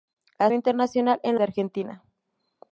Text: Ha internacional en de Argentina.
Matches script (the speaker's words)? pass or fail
pass